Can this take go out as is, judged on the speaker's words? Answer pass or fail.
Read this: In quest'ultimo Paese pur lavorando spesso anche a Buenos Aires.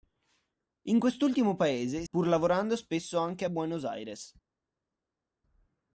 pass